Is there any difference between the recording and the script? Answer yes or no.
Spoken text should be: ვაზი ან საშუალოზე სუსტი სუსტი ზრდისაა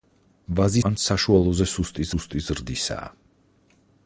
no